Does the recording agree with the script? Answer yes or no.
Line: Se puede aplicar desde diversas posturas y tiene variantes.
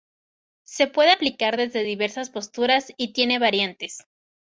yes